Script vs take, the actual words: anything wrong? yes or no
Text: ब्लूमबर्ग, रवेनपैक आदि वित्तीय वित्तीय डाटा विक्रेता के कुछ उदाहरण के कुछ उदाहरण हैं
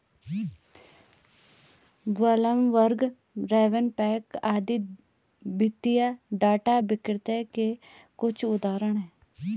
yes